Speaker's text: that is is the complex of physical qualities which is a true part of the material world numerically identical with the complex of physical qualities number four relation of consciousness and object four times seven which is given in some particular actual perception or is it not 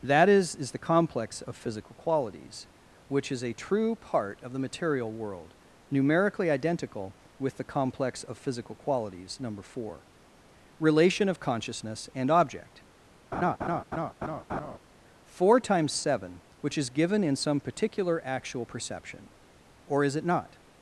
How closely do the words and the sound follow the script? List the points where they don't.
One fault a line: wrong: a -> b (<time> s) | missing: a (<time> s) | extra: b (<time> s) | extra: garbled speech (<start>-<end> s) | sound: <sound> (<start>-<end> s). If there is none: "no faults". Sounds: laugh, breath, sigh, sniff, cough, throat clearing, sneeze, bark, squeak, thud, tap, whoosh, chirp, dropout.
sound: laugh (13.3-14.8 s)